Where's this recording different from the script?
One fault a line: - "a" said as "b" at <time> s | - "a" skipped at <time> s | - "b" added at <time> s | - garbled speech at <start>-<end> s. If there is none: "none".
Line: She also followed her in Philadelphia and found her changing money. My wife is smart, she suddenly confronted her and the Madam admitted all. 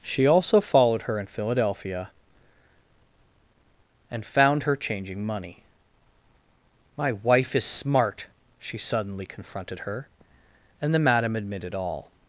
none